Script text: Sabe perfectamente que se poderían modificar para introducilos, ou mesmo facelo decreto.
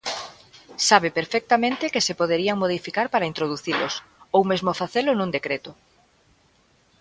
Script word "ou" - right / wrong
right